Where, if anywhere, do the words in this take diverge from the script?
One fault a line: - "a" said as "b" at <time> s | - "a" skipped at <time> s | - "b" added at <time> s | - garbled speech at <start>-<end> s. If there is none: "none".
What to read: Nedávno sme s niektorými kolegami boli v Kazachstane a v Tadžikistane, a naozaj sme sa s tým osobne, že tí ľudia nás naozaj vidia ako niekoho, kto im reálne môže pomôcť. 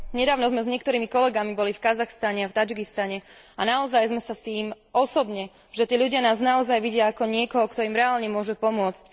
none